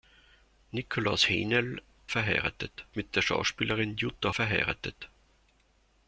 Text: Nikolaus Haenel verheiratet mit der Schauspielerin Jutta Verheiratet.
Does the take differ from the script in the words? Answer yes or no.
no